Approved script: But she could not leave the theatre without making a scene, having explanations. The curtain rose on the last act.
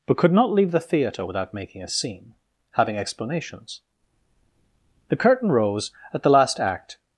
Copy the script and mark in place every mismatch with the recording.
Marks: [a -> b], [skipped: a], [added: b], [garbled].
But [skipped: she] could not leave the theatre without making a scene, having explanations. The curtain rose [on -> at] the last act.